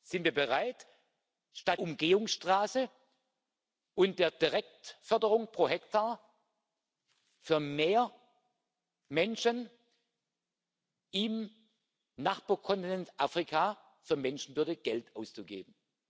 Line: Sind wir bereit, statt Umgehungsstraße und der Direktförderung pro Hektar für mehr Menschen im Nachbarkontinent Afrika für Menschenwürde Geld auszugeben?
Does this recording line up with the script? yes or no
yes